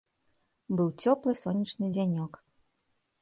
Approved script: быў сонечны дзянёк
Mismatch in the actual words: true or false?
true